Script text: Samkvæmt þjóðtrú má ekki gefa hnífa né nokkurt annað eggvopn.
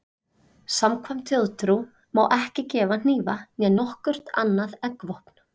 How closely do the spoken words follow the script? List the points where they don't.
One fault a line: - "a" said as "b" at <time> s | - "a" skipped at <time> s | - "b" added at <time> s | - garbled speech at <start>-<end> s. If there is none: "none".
none